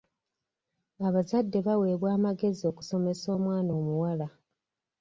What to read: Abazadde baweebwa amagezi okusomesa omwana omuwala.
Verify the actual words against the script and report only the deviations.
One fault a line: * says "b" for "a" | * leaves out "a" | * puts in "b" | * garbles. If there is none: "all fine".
all fine